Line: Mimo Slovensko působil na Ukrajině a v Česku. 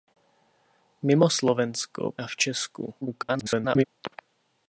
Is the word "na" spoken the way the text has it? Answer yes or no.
no